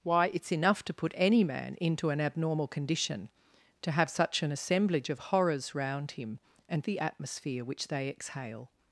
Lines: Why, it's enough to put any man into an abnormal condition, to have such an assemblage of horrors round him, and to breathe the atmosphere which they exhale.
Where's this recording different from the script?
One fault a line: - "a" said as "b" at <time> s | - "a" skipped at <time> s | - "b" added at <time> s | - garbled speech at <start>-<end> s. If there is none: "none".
- "to breathe" skipped at 6.8 s